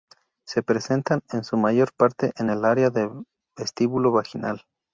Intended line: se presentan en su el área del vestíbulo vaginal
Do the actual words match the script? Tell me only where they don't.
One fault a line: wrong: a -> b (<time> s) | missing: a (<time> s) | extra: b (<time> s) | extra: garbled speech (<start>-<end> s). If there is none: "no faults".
extra: mayor parte en (1.6 s)